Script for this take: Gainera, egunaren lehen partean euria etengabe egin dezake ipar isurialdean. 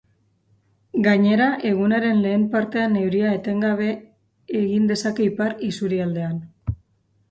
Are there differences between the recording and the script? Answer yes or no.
no